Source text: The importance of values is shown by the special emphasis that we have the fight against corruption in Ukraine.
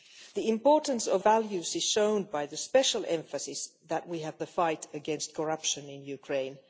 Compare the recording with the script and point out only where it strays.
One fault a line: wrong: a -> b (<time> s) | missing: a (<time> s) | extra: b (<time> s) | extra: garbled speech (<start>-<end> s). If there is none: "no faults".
no faults